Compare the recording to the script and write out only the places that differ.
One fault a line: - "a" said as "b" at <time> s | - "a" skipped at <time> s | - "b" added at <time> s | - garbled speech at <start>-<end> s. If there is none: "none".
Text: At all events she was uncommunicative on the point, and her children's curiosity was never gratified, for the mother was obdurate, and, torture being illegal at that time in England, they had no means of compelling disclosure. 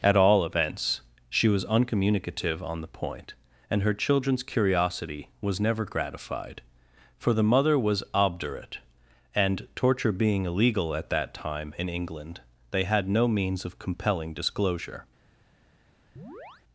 none